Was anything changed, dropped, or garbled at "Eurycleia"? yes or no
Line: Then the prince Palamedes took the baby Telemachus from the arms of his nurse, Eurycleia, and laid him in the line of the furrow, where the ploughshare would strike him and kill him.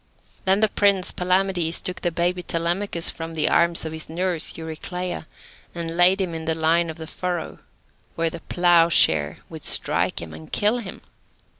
no